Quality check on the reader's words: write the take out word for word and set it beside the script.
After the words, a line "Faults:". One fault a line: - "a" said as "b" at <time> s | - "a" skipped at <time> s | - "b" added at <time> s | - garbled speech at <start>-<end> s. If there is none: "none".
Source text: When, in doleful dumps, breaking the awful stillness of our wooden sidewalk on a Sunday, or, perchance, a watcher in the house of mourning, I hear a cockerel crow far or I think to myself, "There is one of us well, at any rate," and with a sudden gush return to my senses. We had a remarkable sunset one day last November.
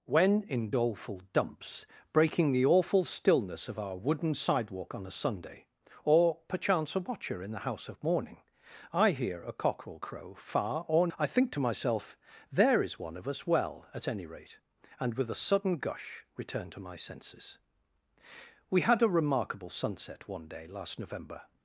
When, in doleful dumps, breaking the awful stillness of our wooden sidewalk on a Sunday, or, perchance, a watcher in the house of mourning, I hear a cockerel crow far or I think to myself, "There is one of us well, at any rate," and with a sudden gush return to my senses. We had a remarkable sunset one day last November.
Faults:
none